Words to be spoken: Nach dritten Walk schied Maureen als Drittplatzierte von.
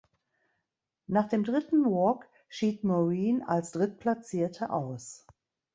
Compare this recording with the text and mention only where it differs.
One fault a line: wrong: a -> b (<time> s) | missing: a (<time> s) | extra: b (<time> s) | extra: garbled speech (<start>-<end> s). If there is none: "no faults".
extra: dem (1.3 s)
wrong: von -> aus (4.7 s)